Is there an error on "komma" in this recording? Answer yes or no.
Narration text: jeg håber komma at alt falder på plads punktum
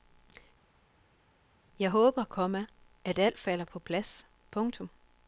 no